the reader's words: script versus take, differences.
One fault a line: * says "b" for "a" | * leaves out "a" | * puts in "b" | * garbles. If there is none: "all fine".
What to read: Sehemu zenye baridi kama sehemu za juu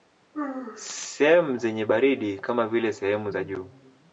* puts in "vile"